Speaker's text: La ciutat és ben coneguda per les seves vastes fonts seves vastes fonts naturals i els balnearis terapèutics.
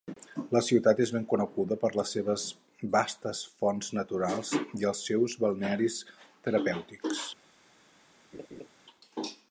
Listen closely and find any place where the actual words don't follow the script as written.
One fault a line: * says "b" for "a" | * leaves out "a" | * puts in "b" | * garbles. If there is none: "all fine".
* leaves out "seves vastes fonts"
* puts in "seus"